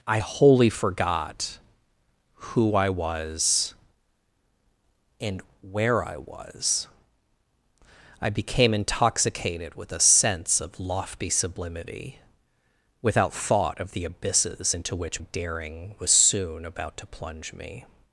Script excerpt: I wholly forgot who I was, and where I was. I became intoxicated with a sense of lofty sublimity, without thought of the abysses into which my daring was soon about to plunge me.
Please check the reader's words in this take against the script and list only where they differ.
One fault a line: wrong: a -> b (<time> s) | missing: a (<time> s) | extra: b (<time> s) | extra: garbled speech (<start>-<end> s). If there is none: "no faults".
missing: my (15.2 s)